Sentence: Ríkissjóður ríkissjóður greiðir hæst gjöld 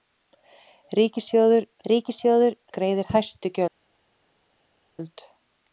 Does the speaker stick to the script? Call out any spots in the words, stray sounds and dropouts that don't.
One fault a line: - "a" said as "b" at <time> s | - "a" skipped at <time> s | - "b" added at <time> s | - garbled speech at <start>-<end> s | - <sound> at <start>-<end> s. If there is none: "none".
none